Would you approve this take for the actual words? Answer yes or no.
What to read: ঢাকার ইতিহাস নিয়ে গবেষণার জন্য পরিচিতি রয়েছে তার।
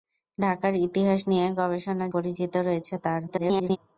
no